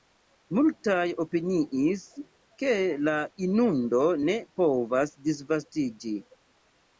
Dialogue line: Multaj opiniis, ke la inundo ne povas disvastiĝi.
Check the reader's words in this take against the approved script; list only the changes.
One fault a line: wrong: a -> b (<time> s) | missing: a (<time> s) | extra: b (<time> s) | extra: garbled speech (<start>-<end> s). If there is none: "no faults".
no faults